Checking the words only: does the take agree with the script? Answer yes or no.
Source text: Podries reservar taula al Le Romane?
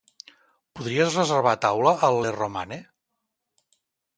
yes